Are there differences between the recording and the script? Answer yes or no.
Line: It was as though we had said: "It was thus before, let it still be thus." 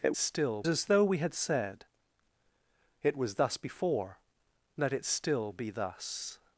yes